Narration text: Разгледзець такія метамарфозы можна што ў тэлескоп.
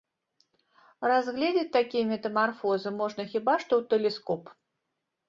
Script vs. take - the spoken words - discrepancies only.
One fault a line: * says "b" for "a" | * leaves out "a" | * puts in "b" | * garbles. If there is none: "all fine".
* puts in "хіба"